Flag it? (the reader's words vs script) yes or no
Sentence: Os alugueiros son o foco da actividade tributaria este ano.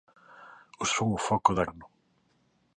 yes